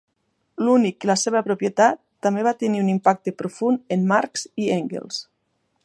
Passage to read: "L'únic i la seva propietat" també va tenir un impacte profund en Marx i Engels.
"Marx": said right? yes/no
yes